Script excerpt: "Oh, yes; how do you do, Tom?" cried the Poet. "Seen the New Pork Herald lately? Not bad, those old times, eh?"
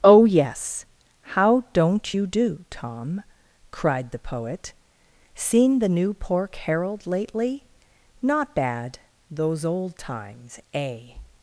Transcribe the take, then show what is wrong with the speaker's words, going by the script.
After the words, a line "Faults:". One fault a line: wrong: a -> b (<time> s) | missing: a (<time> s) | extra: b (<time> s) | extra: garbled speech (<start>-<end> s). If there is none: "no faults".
"Oh, yes; how don't you do, Tom?" cried the Poet. "Seen the New Pork Herald lately? Not bad, those old times, eh?"
Faults:
wrong: do -> don't (1.7 s)